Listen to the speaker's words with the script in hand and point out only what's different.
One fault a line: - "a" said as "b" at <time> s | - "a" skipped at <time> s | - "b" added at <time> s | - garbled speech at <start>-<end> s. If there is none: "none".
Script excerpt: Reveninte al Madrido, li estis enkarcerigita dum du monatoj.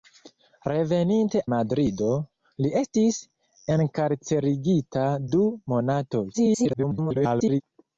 - "al" skipped at 1.4 s
- "dum" skipped at 5.1 s
- garbled speech at 6.3-7.6 s